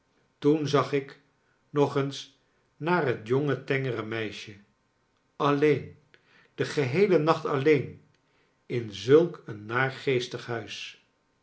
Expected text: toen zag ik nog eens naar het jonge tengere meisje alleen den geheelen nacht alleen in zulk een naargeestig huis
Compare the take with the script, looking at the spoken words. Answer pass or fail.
pass